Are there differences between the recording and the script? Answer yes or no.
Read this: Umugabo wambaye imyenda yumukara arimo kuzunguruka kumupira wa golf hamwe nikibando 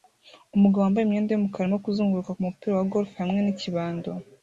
no